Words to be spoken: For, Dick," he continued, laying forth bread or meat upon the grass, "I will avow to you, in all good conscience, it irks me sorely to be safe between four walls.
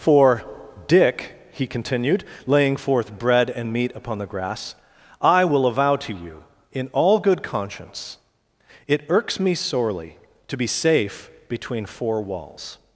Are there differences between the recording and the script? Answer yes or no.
yes